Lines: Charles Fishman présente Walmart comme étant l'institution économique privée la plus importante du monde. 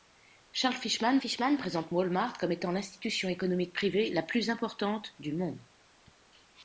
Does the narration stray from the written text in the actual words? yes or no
yes